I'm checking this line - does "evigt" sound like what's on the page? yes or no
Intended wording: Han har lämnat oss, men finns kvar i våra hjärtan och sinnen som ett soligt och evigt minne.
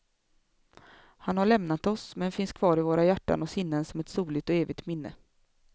yes